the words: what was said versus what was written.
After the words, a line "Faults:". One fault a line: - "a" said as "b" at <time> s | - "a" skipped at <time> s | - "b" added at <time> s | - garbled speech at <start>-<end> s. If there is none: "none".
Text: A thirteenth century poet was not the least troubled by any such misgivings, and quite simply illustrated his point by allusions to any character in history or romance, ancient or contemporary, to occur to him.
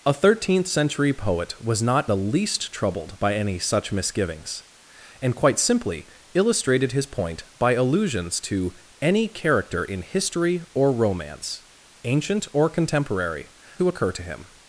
A thirteenth century poet was not the least troubled by any such misgivings, and quite simply illustrated his point by allusions to any character in history or romance, ancient or contemporary, to occur to him.
Faults:
none